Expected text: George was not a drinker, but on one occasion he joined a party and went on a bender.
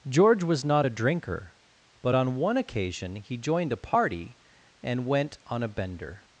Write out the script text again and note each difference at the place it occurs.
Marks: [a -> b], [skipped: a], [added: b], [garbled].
George was not a drinker, but on one occasion he joined a party and went on a bender.